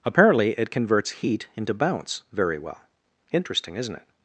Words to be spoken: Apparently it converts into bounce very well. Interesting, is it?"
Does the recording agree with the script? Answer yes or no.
no